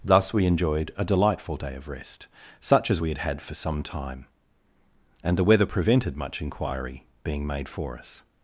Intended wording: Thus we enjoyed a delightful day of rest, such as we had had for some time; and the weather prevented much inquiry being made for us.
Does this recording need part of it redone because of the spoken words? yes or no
no